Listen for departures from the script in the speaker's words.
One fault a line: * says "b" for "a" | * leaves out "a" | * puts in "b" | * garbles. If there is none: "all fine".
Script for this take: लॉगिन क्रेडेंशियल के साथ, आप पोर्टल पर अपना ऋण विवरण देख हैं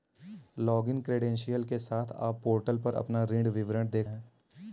all fine